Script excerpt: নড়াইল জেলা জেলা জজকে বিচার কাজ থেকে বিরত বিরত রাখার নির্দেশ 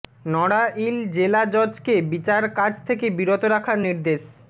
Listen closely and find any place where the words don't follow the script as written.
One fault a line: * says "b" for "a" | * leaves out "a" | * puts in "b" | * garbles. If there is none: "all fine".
* leaves out "জেলা"
* leaves out "বিরত"